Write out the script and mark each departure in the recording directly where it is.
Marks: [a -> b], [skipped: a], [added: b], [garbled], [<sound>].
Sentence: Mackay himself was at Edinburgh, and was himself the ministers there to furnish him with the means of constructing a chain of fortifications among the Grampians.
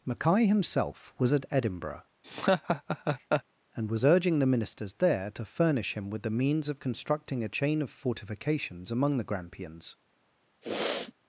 Mackay himself was at Edinburgh, [laugh] and was [himself -> urging] the ministers there to furnish him with the means of constructing a chain of fortifications among the Grampians. [sniff]